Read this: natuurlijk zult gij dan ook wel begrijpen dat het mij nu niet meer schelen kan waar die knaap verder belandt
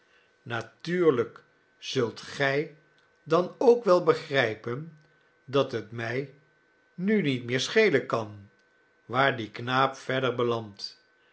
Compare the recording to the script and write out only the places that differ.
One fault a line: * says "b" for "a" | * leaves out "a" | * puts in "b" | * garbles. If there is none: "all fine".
all fine